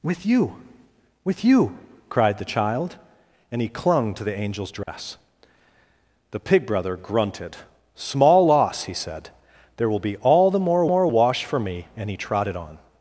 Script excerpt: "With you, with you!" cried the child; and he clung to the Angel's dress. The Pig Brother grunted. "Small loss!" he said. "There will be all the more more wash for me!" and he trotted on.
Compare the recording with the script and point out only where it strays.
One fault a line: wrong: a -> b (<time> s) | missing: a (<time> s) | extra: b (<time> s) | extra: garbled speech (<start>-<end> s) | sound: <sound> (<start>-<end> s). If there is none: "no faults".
sound: dropout (4.8-4.9 s)